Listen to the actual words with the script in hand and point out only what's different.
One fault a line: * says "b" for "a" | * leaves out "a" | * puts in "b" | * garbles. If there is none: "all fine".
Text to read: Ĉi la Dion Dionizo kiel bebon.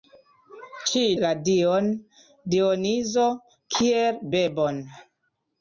all fine